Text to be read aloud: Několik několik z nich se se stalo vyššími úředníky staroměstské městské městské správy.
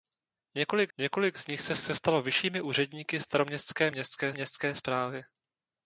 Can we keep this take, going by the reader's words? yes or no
yes